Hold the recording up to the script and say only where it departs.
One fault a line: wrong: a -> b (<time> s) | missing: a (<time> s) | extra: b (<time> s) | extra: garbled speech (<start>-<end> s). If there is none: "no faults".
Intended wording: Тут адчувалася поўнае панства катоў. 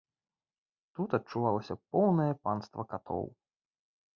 no faults